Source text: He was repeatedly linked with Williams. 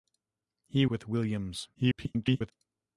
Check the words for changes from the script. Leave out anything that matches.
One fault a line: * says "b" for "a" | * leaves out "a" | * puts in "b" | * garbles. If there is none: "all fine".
* leaves out "was repeatedly linked"
* garbles